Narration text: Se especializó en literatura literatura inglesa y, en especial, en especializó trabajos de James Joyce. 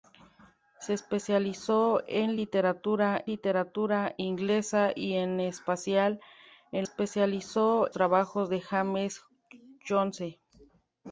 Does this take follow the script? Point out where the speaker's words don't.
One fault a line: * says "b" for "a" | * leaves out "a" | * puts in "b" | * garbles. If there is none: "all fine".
all fine